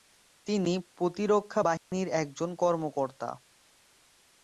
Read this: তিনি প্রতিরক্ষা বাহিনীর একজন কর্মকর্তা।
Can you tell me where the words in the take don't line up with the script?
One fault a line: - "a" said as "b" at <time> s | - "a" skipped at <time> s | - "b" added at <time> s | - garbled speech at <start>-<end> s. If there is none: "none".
none